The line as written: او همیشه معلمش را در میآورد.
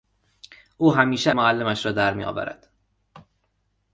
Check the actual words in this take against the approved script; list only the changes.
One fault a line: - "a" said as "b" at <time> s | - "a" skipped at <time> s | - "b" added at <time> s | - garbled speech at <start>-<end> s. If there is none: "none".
none